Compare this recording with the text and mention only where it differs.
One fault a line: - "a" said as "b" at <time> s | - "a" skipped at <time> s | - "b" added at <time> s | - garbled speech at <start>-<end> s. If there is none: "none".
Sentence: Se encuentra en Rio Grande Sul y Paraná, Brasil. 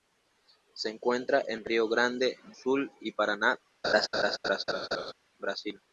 none